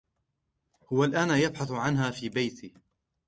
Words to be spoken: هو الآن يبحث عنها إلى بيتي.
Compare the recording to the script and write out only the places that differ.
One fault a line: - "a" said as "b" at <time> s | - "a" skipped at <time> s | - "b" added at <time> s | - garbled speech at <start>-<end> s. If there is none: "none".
- "إلى" said as "في" at 2.1 s